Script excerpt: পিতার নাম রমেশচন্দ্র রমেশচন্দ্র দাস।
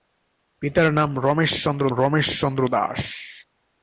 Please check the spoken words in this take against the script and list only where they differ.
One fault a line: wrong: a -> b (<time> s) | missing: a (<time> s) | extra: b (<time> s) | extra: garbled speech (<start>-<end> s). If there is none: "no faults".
no faults